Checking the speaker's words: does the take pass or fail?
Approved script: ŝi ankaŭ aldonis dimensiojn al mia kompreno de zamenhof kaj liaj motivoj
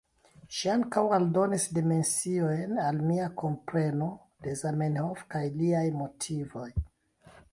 pass